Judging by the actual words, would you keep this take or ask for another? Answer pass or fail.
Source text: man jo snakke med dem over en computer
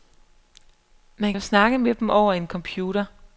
pass